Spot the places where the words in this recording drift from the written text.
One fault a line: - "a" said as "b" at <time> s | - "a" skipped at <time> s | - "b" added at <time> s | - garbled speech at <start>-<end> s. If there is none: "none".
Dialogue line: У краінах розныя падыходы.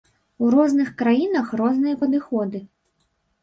- "розных" added at 0.6 s